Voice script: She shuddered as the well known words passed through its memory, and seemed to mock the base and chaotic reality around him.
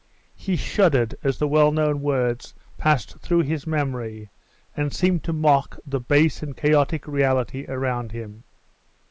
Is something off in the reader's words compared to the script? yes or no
yes